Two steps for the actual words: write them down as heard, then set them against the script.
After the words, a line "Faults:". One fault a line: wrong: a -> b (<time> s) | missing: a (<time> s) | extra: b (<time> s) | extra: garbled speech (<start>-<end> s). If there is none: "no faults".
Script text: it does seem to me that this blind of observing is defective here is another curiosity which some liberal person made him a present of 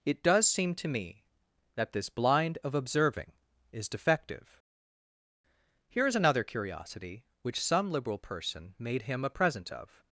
it does seem to me that this blind of observing is defective here is another curiosity which some liberal person made him a present of
Faults:
no faults